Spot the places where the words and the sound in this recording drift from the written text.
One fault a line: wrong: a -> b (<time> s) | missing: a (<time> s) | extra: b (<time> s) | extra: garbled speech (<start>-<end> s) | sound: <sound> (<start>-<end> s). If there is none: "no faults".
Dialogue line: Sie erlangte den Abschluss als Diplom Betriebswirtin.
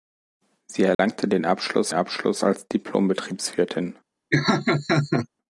sound: dropout (0.9-1.0 s)
extra: Abschluss (1.9 s)
sound: laugh (4.3-5.3 s)